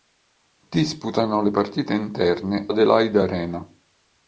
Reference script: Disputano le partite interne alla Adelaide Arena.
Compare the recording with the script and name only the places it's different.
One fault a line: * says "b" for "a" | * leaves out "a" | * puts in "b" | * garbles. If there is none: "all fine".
* leaves out "alla"